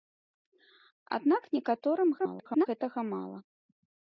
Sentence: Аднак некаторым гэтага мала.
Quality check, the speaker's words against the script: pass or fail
fail